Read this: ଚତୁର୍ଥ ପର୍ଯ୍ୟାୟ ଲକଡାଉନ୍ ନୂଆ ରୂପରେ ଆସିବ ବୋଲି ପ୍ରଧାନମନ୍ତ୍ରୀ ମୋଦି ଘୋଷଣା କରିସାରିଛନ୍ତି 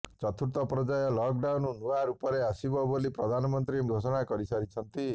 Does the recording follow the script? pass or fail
fail